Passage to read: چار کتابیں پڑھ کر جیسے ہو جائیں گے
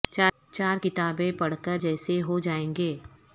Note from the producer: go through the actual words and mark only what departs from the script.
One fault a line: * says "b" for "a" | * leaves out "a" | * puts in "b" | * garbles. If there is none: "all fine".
all fine